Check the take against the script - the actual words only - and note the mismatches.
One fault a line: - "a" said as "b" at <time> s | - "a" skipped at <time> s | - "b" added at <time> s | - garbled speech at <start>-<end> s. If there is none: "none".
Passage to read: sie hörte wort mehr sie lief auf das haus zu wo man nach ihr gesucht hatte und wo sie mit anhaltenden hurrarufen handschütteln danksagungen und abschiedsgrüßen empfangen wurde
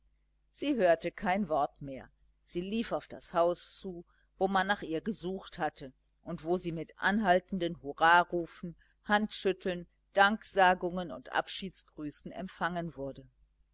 - "kein" added at 1.1 s